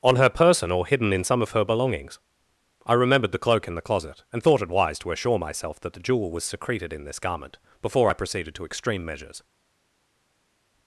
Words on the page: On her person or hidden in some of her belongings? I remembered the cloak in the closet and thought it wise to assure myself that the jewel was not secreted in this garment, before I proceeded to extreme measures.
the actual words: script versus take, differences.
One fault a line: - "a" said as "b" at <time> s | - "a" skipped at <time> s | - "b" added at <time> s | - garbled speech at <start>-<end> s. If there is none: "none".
- "not" skipped at 6.4 s